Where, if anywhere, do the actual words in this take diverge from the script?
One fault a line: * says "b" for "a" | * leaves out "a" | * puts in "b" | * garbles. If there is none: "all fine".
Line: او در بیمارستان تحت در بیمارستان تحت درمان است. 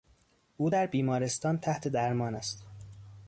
* leaves out "در بیمارستان تحت"